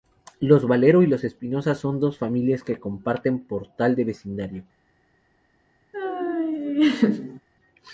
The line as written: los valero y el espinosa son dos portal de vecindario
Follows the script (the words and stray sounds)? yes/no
no